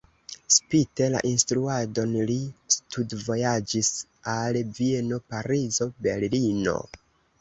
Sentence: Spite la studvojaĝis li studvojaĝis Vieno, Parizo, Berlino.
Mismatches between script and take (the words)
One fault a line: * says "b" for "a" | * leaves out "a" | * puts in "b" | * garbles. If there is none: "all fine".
* says "instruadon" for "studvojaĝis"
* puts in "al"